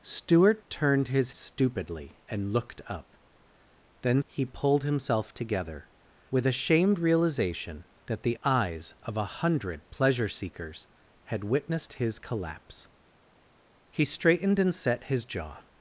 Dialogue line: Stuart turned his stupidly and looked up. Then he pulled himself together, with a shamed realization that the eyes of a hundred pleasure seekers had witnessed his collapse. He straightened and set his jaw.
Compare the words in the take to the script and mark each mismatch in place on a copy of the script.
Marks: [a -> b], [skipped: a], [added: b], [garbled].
Stuart turned his stupidly and looked up. Then he pulled himself together, with a shamed realization that the eyes of a hundred pleasure seekers had witnessed his collapse. He straightened and set his jaw.